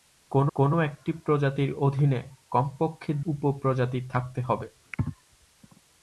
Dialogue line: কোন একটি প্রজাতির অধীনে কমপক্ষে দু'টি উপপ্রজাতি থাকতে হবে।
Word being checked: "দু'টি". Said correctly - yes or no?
no